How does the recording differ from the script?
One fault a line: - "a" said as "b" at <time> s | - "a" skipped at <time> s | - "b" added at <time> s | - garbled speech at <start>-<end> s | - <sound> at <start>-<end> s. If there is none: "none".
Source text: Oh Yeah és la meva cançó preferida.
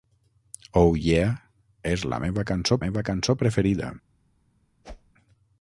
- "meva cançó" added at 2.8 s
- whoosh at 4.8-5.1 s